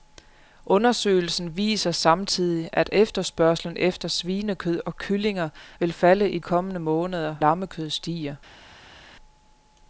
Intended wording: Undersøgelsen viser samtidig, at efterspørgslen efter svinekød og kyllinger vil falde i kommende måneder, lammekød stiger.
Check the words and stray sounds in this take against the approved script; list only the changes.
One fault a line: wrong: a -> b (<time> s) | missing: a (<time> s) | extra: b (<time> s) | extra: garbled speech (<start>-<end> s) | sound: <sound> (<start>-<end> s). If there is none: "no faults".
no faults